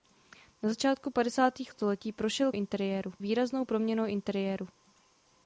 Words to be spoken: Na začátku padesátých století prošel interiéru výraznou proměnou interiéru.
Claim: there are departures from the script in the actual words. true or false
false